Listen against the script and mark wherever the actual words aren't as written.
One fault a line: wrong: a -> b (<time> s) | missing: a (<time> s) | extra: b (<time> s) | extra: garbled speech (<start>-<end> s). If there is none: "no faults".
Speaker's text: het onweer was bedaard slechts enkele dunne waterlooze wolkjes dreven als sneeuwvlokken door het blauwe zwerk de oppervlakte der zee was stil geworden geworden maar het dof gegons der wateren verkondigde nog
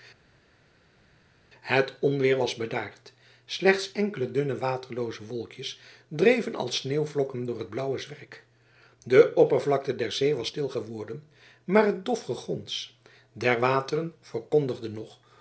missing: geworden (11.2 s)